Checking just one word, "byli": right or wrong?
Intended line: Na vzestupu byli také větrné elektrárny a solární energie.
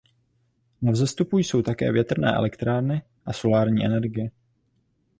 wrong